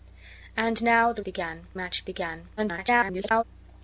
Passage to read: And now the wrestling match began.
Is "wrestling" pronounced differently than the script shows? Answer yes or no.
yes